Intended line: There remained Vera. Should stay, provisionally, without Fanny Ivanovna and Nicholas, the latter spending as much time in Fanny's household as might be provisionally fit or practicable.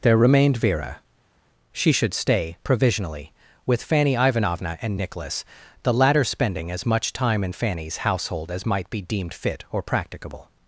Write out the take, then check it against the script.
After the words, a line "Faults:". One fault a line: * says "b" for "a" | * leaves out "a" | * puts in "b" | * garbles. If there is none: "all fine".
There remained Vera. She should stay, provisionally, with Fanny Ivanovna and Nicholas, the latter spending as much time in Fanny's household as might be deemed fit or practicable.
Faults:
* puts in "She"
* says "with" for "without"
* says "deemed" for "provisionally"